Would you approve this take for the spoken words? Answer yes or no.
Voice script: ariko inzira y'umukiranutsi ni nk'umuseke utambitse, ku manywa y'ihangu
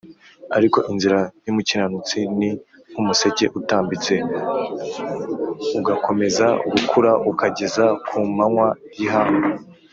no